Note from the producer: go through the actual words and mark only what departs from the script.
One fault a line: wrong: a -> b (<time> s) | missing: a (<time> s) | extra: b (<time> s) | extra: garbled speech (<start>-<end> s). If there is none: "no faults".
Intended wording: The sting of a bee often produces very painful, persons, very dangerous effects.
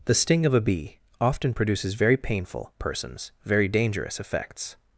no faults